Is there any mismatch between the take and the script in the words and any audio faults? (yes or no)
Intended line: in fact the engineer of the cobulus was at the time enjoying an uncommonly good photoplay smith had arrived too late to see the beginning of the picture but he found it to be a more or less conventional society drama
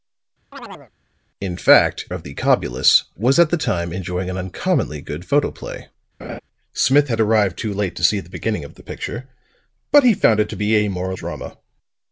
yes